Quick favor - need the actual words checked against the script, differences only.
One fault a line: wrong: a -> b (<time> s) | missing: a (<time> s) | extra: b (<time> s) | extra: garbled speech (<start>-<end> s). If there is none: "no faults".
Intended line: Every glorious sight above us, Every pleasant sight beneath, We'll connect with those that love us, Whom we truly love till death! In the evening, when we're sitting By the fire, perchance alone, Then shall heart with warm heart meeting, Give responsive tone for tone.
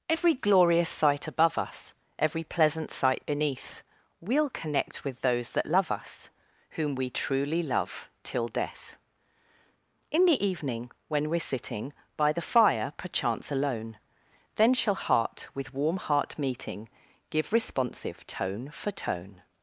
no faults